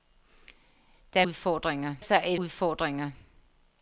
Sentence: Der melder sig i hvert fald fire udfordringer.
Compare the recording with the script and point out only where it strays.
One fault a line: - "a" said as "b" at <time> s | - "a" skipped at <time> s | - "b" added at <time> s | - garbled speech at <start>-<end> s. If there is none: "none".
- "melder" said as "udfordringer" at 1.2 s
- "hvert fald fire" skipped at 2.4 s